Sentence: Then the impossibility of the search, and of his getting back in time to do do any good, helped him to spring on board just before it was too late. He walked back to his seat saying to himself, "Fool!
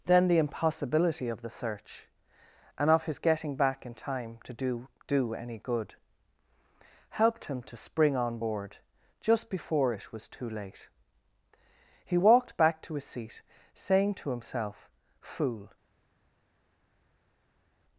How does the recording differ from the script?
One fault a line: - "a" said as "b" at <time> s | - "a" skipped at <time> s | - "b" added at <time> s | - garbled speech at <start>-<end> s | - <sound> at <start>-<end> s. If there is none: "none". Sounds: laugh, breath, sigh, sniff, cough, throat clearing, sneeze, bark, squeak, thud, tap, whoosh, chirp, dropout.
none